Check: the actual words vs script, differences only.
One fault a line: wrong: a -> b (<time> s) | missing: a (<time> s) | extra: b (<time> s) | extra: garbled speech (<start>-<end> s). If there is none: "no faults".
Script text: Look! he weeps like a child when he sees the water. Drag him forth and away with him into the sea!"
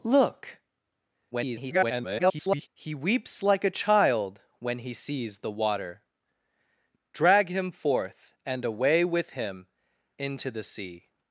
extra: garbled speech (1.3-2.7 s)